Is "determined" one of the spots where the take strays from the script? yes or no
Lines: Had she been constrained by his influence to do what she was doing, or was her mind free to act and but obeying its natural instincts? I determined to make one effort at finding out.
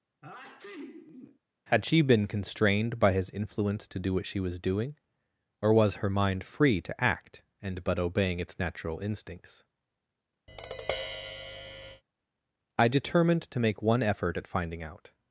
no